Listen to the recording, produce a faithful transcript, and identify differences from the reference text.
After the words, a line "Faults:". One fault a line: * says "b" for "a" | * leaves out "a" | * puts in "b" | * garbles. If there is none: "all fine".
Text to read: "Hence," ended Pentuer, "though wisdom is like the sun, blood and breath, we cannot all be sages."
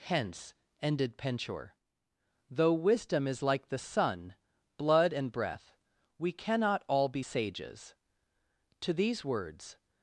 "Hence," ended Pentuer, "though wisdom is like the sun, blood and breath, we cannot all be sages." To these words
Faults:
* puts in "To these words"